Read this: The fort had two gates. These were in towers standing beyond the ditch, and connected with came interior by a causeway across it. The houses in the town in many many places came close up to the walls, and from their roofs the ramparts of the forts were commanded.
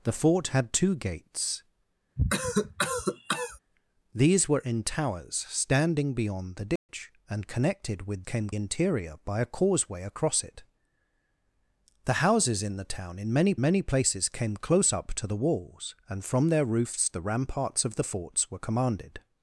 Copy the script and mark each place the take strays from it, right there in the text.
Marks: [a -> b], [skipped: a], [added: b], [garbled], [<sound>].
The fort had two gates. [cough] These were in towers standing beyond the ditch, [dropout] and connected with came interior by a causeway across it. The houses in the town in many many places came close up to the walls, and from their roofs the ramparts of the forts were commanded.